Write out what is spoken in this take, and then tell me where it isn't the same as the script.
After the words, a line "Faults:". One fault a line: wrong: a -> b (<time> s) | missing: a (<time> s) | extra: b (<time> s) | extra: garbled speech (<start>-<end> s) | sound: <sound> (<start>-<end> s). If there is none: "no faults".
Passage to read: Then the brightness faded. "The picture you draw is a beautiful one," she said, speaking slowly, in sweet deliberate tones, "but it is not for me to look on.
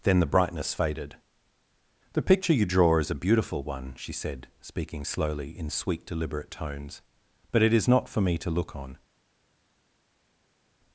Then the brightness faded. "The picture you draw is a beautiful one," she said, speaking slowly, in sweet deliberate tones, "but it is not for me to look on.
Faults:
no faults